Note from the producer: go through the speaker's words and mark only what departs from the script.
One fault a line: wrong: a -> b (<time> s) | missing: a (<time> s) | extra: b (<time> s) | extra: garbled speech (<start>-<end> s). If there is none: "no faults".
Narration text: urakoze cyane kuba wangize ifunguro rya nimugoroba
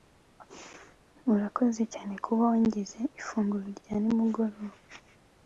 no faults